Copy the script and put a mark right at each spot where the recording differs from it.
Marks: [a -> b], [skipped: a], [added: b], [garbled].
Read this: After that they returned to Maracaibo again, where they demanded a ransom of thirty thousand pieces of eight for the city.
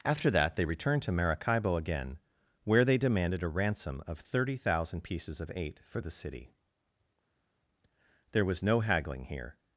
After that they returned to Maracaibo again, where they demanded a ransom of thirty thousand pieces of eight for the city. [added: There was no haggling here]